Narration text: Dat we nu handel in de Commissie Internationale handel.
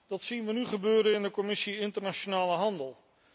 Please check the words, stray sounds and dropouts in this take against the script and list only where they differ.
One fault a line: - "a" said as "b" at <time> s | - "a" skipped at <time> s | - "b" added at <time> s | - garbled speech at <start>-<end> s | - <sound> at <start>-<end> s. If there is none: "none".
- "zien" added at 0.2 s
- "handel" said as "gebeuren" at 0.7 s